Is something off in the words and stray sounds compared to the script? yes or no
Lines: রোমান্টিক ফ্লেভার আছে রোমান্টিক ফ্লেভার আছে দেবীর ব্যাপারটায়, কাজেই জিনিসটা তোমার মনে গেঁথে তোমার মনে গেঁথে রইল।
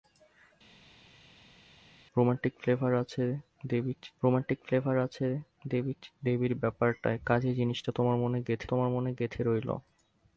no